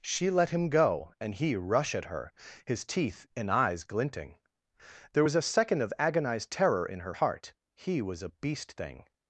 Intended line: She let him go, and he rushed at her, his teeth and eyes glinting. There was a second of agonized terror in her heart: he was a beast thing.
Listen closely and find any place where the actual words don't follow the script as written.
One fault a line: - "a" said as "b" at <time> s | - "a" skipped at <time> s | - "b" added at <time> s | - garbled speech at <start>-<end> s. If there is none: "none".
- "rushed" said as "rush" at 1.6 s